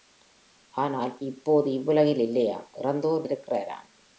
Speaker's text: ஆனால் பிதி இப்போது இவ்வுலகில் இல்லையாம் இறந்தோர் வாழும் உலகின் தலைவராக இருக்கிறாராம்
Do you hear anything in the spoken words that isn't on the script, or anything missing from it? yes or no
yes